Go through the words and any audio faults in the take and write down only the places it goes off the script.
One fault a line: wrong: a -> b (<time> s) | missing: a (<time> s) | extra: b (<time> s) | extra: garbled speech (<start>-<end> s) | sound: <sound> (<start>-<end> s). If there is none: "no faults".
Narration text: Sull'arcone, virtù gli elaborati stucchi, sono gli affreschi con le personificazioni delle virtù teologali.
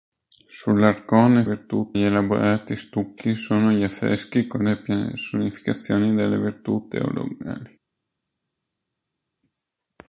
no faults